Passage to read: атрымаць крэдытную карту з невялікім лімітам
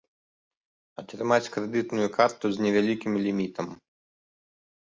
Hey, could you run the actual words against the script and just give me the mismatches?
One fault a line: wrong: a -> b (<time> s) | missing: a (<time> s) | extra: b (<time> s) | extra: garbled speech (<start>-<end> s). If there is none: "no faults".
no faults